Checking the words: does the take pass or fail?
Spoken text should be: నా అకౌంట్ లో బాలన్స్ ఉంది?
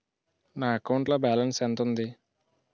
fail